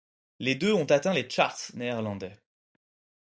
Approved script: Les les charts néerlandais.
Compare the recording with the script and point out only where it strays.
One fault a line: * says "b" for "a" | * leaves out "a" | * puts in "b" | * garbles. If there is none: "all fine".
* puts in "deux ont atteint"